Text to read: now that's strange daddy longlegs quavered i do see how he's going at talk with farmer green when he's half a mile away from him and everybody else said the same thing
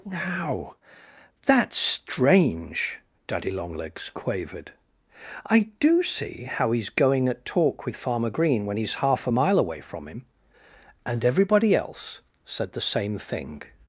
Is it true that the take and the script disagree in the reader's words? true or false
false